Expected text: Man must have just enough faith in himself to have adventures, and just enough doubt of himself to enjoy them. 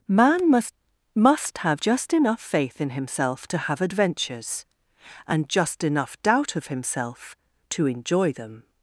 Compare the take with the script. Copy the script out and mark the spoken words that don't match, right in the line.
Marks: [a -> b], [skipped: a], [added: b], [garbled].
Man must [added: must] have just enough faith in himself to have adventures, and just enough doubt of himself to enjoy them.